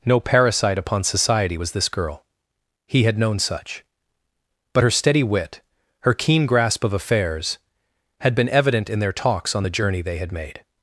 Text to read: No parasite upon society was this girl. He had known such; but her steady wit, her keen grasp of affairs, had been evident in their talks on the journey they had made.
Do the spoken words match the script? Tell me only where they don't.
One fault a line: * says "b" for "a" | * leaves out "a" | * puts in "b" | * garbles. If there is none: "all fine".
all fine